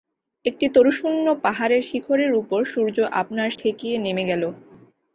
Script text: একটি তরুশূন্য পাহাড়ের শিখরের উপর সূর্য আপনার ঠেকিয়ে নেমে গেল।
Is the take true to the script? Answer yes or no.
yes